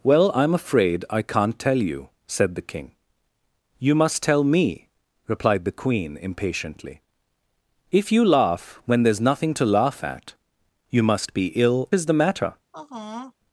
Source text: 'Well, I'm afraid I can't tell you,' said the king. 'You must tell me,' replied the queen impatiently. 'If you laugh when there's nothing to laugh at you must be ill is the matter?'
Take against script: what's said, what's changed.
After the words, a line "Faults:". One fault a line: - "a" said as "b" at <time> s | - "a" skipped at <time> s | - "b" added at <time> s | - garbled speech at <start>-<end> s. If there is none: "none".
'Well, I'm afraid I can't tell you,' said the king. 'You must tell me,' replied the queen impatiently. 'If you laugh when there's nothing to laugh at you must be ill is the matter?'
Faults:
none